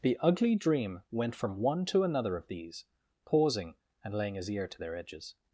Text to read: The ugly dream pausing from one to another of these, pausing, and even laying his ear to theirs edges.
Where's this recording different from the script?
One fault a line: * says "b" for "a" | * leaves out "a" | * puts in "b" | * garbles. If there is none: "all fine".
* says "went" for "pausing"
* leaves out "even"
* says "their" for "theirs"